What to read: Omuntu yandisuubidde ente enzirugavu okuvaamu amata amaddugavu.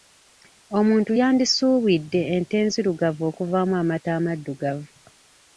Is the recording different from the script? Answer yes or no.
no